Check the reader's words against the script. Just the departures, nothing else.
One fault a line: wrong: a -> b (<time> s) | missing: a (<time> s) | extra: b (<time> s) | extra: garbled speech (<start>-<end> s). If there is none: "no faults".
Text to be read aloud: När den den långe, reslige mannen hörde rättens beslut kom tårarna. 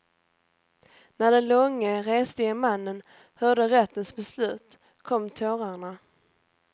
missing: den (1.5 s)